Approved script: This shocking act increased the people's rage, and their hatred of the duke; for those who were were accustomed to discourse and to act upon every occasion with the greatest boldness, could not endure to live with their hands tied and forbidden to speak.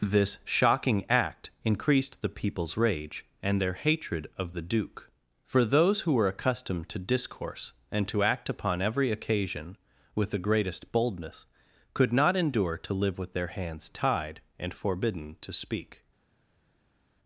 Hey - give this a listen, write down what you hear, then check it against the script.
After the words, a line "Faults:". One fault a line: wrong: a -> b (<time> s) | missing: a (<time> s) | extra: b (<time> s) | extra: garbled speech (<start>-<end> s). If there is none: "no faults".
This shocking act increased the people's rage, and their hatred of the duke; for those who were accustomed to discourse and to act upon every occasion with the greatest boldness, could not endure to live with their hands tied and forbidden to speak.
Faults:
missing: were (6.3 s)